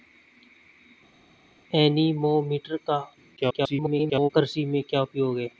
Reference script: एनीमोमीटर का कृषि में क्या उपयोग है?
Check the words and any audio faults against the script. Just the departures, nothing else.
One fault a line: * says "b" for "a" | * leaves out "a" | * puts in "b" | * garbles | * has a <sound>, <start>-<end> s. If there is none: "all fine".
* garbles